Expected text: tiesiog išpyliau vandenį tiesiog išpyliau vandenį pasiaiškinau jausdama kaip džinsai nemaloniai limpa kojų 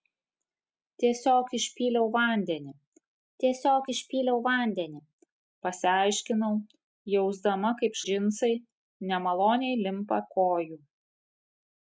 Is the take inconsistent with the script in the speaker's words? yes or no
no